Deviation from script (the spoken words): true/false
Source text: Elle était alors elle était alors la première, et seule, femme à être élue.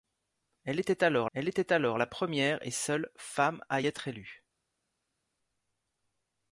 false